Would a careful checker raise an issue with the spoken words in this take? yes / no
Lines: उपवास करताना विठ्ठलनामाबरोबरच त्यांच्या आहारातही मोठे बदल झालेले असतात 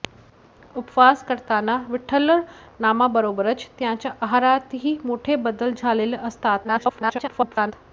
yes